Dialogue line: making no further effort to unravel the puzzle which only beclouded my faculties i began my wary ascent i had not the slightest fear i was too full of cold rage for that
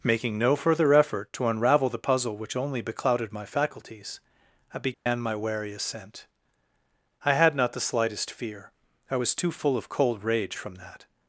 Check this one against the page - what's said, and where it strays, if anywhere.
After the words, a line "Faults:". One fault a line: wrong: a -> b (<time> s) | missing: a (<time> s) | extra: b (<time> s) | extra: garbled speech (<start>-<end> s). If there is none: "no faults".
making no further effort to unravel the puzzle which only beclouded my faculties i began my wary ascent i had not the slightest fear i was too full of cold rage from that
Faults:
wrong: for -> from (10.6 s)